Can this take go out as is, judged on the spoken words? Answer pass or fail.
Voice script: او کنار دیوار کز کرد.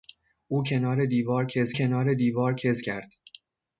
fail